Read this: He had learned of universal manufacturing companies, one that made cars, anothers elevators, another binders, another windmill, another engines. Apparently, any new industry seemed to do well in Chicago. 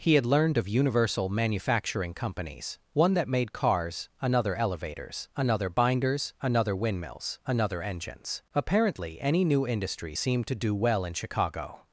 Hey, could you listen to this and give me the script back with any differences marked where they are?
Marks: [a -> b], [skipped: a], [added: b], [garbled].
He had learned of universal manufacturing companies, one that made cars, [anothers -> another] elevators, another binders, another [windmill, -> windmills] another engines. Apparently, any new industry seemed to do well in Chicago.